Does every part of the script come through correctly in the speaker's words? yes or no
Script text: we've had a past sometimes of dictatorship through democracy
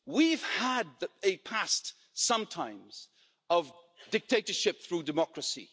yes